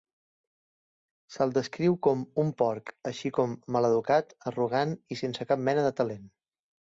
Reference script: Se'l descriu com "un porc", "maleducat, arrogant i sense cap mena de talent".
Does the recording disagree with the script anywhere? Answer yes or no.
yes